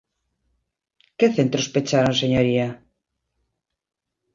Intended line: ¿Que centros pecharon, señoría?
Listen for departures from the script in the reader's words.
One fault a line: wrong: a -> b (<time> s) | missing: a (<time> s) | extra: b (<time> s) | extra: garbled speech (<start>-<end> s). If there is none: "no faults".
no faults